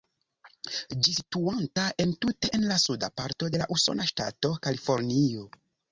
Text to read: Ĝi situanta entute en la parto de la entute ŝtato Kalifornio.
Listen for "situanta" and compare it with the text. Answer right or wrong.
right